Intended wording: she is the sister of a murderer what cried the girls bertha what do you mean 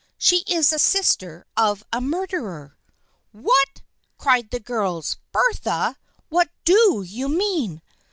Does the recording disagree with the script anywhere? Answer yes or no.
no